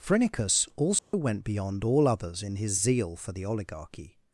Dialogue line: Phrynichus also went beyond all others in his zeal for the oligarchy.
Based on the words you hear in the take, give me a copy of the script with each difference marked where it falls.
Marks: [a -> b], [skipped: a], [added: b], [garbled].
Phrynichus also went beyond all others in his zeal for the oligarchy.